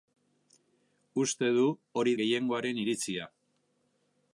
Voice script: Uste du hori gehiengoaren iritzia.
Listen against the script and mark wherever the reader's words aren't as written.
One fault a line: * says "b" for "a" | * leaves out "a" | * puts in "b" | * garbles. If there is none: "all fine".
all fine